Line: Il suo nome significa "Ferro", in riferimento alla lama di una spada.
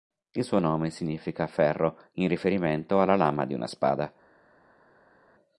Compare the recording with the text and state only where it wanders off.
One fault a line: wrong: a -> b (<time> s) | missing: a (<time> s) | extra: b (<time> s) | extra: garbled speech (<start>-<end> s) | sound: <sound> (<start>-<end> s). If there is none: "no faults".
no faults